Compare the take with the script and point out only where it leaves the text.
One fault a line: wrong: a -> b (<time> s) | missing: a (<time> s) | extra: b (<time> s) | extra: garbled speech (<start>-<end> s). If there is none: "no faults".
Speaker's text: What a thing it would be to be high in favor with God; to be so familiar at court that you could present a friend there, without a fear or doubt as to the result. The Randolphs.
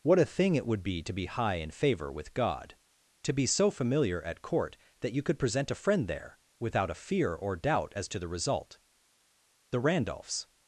no faults